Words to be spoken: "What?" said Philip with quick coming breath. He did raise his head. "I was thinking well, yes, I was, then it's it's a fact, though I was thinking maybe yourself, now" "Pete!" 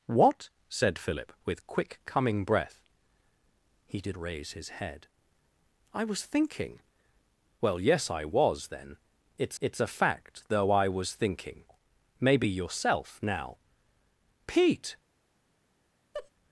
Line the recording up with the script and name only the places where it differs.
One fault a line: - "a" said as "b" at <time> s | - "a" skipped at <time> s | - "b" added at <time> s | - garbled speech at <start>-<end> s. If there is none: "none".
none